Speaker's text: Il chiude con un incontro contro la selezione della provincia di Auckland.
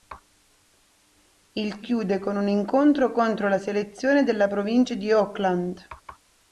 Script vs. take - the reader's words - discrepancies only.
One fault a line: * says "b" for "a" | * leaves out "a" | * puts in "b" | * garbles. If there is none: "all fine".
all fine